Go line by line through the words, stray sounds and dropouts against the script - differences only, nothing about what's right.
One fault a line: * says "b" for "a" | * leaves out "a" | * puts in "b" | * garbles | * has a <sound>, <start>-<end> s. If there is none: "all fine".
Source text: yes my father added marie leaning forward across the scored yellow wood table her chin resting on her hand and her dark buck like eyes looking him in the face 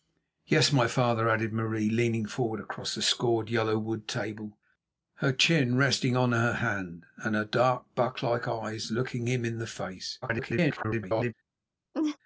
* garbles
* has a laugh, 11.9-12.2 s